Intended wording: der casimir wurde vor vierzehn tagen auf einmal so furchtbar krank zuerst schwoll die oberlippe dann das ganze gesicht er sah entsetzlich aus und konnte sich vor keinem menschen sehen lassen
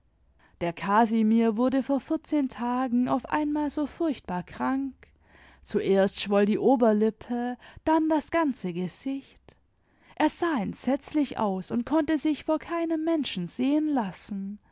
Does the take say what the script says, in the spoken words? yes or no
yes